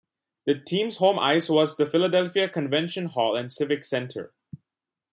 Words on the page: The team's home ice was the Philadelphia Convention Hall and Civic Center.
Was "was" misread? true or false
false